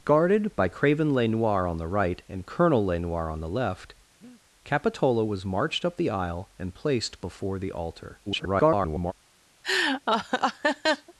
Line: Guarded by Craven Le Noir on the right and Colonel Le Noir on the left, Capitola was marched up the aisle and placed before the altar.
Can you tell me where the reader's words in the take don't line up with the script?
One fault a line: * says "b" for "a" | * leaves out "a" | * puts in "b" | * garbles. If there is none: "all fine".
* garbles